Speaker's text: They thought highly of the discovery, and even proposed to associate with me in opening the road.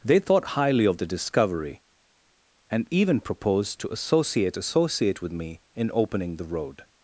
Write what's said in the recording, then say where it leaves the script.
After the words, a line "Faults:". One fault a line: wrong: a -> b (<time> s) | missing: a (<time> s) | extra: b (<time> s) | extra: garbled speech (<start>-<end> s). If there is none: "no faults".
They thought highly of the discovery, and even proposed to associate associate with me in opening the road.
Faults:
extra: associate (4.6 s)